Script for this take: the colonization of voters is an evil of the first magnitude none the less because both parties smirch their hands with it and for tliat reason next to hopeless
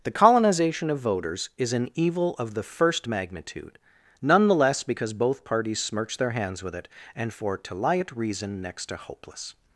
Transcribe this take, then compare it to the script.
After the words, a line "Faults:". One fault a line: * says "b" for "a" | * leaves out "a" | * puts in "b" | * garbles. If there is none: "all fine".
the colonization of voters is an evil of the first magnitude none the less because both parties smirch their hands with it and for to lie at reason next to hopeless
Faults:
* says "to lie at" for "tliat"